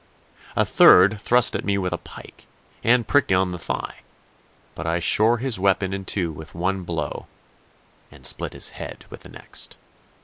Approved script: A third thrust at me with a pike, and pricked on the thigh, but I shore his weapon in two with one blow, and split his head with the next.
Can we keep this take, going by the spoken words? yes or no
yes